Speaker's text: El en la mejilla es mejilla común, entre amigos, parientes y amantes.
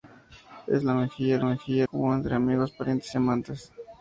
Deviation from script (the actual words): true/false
false